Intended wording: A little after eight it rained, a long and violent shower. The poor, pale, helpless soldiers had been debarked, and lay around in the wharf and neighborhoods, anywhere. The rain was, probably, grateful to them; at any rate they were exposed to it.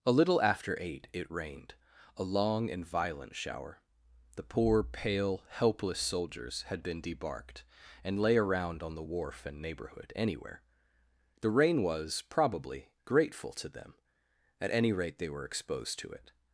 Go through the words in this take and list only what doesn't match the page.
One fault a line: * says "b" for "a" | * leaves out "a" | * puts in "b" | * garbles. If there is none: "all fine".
* says "on" for "in"
* says "neighborhood" for "neighborhoods"